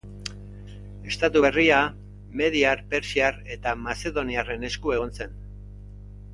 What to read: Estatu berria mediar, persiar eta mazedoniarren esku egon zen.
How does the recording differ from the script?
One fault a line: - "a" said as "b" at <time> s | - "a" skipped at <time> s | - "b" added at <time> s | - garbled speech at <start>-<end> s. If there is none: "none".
none